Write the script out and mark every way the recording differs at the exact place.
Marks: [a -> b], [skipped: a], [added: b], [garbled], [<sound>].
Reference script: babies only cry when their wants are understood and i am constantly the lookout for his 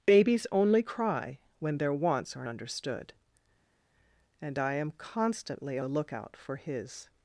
babies only cry when their wants are understood and i am constantly the lookout for his